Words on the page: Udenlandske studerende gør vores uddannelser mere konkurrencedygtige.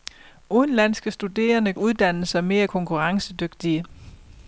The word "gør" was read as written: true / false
false